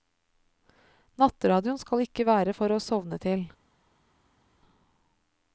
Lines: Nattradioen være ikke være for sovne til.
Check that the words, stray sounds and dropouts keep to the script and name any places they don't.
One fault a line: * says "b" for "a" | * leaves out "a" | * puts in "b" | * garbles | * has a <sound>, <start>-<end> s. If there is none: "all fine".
* says "skal" for "være"
* puts in "å"